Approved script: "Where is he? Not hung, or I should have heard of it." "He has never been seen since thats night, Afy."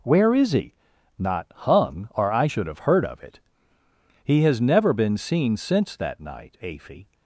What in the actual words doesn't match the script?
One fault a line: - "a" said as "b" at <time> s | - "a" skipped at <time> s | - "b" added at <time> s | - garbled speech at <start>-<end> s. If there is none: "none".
- "thats" said as "that" at 6.0 s